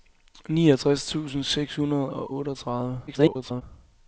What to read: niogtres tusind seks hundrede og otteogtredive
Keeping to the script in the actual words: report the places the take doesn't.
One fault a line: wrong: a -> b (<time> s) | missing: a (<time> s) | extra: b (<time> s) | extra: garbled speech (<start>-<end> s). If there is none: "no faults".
extra: garbled speech (3.1-3.6 s)